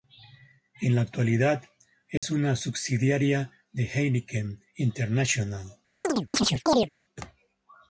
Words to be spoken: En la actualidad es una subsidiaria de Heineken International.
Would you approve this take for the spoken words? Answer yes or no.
yes